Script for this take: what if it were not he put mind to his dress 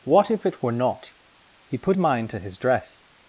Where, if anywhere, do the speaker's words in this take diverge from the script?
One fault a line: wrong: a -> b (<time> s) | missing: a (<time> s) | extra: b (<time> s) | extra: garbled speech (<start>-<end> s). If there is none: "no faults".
no faults